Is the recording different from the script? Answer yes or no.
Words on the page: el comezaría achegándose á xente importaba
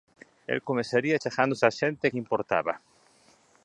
yes